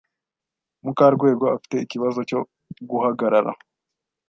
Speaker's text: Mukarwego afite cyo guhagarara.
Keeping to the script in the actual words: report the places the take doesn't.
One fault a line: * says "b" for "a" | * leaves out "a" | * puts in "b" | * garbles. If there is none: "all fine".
* puts in "ikibazo"